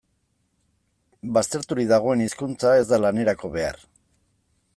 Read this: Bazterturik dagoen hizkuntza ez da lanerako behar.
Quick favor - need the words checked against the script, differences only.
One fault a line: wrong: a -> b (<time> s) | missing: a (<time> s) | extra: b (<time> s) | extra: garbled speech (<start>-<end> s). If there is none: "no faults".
no faults